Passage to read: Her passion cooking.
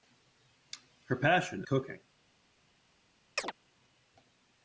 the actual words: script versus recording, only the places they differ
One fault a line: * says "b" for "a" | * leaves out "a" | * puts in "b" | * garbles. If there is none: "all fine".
all fine